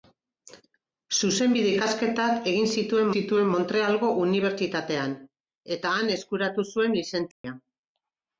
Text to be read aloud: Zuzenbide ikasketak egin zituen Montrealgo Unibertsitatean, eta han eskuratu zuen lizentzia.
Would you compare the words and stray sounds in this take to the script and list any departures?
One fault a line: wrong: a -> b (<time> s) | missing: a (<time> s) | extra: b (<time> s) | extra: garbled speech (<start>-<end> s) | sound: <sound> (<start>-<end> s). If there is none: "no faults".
extra: zituen (3.1 s)
sound: dropout (7.3-7.4 s)